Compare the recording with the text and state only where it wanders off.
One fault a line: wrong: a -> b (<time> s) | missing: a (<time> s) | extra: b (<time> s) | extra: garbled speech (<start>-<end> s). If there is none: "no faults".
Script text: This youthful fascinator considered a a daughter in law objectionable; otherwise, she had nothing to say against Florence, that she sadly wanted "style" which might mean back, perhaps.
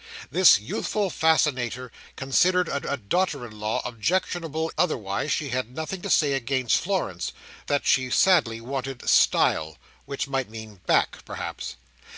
no faults